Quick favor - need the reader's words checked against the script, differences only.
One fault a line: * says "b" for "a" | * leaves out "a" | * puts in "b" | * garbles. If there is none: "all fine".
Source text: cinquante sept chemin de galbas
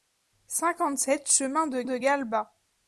* puts in "de"